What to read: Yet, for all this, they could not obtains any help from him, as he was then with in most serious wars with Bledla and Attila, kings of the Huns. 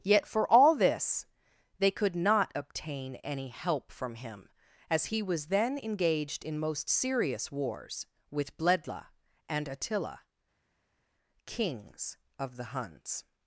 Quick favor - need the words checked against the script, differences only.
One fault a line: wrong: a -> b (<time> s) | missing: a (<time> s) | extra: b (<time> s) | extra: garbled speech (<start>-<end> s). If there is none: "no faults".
wrong: obtains -> obtain (2.5 s)
wrong: with -> engaged (5.8 s)